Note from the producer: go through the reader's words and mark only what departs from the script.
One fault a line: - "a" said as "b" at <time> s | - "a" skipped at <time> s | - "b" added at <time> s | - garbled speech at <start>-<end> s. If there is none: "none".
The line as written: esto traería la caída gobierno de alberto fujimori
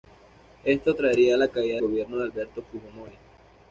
none